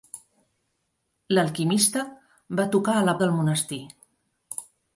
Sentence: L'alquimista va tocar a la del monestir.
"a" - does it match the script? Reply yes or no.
yes